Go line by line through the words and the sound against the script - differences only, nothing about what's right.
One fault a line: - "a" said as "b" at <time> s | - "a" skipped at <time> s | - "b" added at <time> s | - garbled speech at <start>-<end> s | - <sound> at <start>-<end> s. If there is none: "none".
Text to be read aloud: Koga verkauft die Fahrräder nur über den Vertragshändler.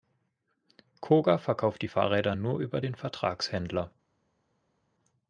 none